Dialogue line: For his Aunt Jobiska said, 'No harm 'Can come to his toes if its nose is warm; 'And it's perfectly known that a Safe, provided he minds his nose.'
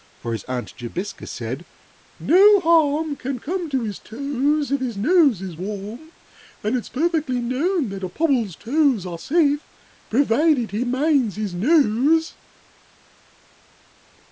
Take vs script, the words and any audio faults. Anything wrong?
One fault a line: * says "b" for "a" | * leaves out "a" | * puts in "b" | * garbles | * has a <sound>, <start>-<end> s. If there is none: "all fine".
* says "his" for "its"
* puts in "Pobble's toes Are"